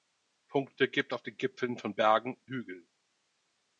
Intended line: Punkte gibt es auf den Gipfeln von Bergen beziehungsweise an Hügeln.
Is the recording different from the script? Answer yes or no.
yes